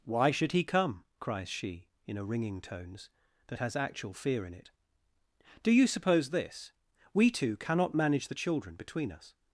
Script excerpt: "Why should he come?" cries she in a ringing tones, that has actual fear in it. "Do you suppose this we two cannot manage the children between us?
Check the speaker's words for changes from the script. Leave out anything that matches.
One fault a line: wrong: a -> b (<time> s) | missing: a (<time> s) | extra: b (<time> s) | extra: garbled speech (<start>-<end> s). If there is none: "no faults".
no faults